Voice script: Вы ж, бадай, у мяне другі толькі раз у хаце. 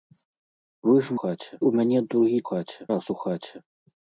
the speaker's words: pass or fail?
fail